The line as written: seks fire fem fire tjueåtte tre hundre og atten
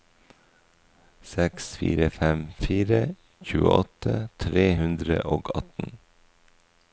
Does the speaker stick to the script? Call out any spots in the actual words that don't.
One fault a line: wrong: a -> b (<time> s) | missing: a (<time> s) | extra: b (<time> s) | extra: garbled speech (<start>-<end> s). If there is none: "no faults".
no faults